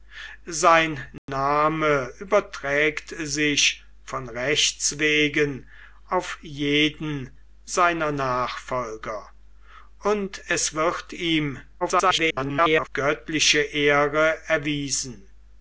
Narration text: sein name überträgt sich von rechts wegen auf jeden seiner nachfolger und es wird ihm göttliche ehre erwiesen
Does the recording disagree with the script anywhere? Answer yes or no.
yes